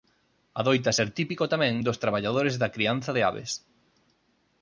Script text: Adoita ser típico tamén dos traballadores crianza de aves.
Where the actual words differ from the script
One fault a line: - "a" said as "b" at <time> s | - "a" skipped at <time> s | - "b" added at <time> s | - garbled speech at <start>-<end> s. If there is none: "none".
- "da" added at 2.6 s